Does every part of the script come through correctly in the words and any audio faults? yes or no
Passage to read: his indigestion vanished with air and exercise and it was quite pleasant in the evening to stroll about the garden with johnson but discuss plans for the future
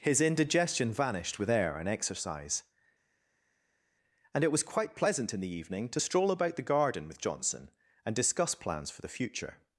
no